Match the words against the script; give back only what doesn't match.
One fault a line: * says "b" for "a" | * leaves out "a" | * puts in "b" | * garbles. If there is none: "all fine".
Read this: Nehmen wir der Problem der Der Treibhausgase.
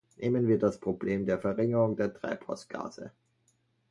* says "das" for "der"
* puts in "Verringerung"